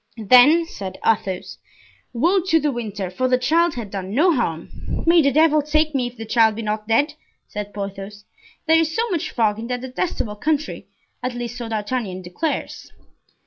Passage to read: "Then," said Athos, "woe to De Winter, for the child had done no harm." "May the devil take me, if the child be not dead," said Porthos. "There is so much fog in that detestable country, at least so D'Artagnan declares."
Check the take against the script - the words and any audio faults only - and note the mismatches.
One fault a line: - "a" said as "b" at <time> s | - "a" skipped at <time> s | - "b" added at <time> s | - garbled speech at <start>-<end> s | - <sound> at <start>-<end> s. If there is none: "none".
none